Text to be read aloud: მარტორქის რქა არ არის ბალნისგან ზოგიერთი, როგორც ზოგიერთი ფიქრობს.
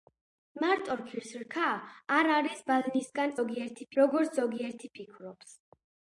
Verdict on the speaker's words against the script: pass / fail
pass